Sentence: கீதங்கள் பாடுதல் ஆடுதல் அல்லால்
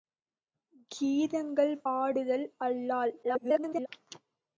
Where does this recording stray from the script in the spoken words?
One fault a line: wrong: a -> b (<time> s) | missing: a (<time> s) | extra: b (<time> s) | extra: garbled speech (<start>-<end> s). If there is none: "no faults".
missing: பாடுதல் (1.7 s)
extra: garbled speech (3.2-3.9 s)